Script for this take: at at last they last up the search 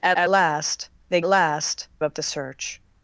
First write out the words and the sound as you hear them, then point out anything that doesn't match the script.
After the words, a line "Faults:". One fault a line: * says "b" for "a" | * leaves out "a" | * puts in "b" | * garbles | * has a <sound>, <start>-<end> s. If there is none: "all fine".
at at last they last up the search
Faults:
all fine